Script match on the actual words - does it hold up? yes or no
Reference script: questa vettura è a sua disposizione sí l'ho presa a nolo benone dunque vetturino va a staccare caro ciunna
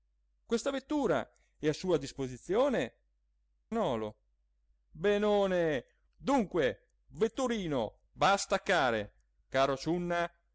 no